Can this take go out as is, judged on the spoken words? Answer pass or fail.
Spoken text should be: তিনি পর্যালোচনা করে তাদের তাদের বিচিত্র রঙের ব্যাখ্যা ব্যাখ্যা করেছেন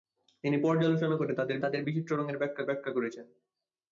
pass